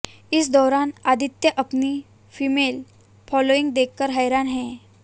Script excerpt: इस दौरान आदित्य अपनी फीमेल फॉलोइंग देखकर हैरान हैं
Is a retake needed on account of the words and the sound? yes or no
no